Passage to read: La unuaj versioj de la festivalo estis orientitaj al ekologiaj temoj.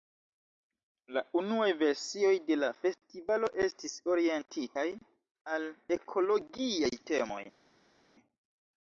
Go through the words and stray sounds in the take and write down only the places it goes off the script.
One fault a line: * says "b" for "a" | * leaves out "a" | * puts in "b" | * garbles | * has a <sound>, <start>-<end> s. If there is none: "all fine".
all fine